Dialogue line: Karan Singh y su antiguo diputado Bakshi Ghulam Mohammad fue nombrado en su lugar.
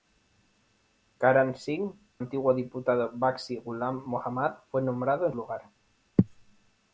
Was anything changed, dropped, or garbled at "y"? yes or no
yes